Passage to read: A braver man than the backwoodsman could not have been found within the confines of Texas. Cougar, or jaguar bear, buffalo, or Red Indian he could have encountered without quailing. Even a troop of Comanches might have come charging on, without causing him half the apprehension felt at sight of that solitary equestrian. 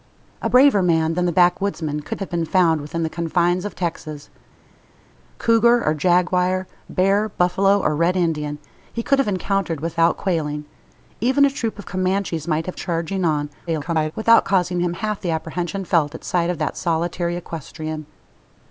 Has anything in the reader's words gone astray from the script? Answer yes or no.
yes